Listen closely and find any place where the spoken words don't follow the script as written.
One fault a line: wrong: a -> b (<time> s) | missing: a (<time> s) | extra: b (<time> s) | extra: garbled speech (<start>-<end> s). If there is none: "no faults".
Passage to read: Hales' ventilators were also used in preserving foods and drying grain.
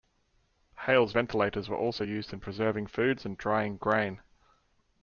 no faults